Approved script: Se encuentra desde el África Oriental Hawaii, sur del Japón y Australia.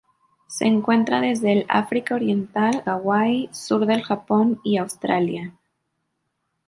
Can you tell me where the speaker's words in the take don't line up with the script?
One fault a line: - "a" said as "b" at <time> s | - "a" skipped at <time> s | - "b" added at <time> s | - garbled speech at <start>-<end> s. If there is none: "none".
none